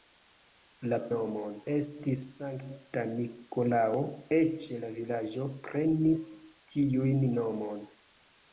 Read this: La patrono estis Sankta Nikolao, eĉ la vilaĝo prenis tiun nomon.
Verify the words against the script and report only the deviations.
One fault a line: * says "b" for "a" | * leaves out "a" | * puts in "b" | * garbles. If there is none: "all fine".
* says "nomon" for "patrono"